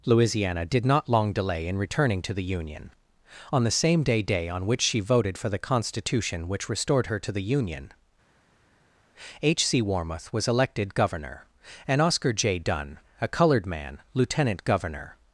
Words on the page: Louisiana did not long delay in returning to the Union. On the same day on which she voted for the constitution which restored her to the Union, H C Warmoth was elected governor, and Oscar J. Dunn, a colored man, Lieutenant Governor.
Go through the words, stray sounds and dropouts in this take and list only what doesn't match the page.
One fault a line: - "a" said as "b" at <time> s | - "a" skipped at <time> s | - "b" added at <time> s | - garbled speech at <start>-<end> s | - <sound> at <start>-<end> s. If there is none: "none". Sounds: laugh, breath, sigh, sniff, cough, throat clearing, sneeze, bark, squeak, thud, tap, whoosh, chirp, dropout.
- "day" added at 4.2 s